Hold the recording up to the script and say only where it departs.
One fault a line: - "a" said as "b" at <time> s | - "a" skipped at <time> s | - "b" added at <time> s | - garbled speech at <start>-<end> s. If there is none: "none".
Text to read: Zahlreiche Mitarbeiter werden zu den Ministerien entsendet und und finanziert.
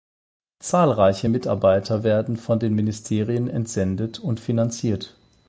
- "zu" said as "von" at 2.4 s
- "und" skipped at 4.4 s